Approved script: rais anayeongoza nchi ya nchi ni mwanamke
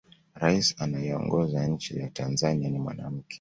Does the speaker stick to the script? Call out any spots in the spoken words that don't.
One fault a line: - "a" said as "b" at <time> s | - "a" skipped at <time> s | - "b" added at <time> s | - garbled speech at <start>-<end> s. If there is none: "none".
- "nchi" said as "tanzania" at 2.1 s